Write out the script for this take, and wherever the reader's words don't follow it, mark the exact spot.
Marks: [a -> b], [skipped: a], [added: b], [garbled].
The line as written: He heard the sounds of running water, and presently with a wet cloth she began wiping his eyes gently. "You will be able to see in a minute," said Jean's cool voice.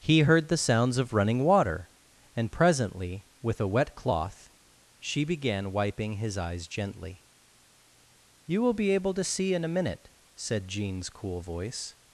He heard the sounds of running water, and presently with a wet cloth she began wiping his eyes gently. "You will be able to see in a minute," said Jean's cool voice.